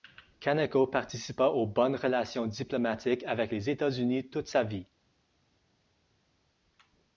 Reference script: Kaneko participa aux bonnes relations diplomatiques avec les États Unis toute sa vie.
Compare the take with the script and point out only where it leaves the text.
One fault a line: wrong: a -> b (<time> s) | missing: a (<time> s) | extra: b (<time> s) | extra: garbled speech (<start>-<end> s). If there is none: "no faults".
no faults